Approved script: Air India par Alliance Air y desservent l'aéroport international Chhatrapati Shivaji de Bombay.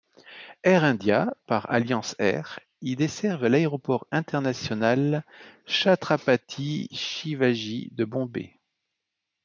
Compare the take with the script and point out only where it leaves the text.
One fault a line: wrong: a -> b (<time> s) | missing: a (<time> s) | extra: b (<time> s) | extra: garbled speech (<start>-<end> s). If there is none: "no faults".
no faults